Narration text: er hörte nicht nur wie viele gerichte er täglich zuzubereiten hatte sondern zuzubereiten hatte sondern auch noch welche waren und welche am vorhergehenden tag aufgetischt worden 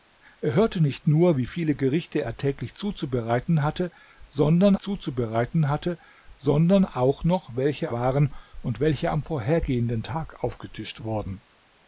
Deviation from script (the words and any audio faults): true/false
false